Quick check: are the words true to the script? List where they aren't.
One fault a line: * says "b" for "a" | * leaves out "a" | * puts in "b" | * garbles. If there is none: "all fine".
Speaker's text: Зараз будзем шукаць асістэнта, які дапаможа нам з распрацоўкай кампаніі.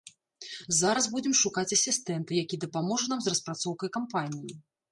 all fine